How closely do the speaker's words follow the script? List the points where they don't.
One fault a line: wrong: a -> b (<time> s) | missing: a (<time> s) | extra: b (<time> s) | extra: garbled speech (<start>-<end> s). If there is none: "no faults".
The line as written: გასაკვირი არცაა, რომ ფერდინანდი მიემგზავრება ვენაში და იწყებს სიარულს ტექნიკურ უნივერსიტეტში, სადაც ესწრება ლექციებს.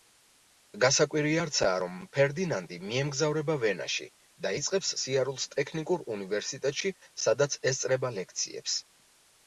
no faults